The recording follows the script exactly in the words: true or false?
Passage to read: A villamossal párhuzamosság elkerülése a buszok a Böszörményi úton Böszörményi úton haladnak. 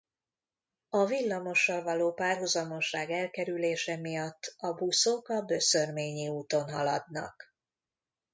false